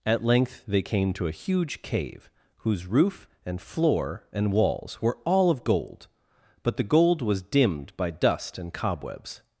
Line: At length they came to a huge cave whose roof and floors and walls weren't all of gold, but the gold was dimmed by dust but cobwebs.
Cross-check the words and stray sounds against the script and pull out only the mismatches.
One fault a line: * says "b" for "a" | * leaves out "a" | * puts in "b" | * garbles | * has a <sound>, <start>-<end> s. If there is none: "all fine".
* says "floor" for "floors"
* says "were" for "weren't"
* says "and" for "but"